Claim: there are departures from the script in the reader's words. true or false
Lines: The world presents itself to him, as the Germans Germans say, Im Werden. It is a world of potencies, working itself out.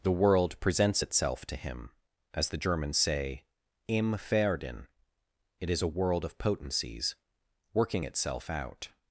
true